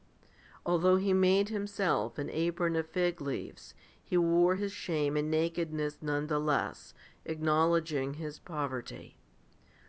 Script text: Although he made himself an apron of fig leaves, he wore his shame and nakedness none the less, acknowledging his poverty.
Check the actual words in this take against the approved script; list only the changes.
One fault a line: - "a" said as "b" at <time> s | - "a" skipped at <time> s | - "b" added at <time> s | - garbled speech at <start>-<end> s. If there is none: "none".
none